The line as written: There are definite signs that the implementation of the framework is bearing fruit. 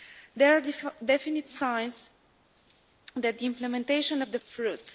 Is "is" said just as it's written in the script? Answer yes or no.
no